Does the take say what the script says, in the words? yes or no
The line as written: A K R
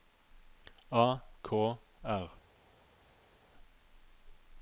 yes